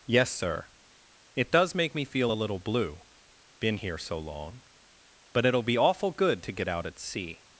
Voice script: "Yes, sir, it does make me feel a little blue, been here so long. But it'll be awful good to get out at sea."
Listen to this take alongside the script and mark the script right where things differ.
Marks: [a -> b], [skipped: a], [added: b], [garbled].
"Yes, sir, it does make me feel a little blue, been here so long. But it'll be awful good to get out at sea."